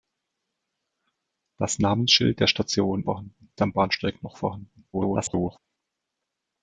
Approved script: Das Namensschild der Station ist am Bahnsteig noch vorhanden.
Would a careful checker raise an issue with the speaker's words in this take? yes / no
yes